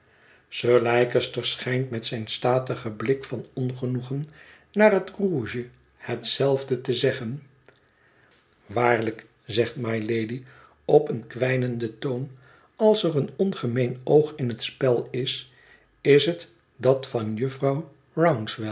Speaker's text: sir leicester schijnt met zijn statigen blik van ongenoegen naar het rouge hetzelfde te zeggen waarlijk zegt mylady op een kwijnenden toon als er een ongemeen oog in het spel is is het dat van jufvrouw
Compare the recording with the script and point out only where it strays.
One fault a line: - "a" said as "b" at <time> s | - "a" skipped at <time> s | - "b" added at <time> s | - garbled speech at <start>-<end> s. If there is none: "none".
none